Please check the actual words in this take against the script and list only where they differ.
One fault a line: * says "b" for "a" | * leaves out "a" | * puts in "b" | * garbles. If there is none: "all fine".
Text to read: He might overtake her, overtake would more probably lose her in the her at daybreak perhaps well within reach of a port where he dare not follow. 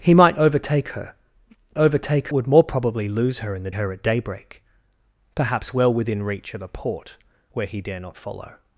all fine